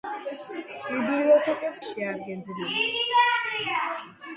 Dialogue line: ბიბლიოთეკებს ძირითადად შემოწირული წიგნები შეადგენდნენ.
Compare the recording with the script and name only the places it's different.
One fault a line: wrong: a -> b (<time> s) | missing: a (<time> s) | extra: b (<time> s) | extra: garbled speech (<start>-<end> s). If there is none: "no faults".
missing: ძირითადად შემოწირული წიგნები (1.8 s)